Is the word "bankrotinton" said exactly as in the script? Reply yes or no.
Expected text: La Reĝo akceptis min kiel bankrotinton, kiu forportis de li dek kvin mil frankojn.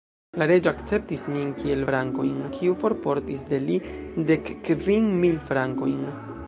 no